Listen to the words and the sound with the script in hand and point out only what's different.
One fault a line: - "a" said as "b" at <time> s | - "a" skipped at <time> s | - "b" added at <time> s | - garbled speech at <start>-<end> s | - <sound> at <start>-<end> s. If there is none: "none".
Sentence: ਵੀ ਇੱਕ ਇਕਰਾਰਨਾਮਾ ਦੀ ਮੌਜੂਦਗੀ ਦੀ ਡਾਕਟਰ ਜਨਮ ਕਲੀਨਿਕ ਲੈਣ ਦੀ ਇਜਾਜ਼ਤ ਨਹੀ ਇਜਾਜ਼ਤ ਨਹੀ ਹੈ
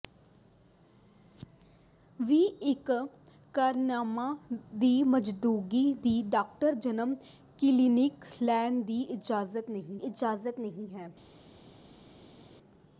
none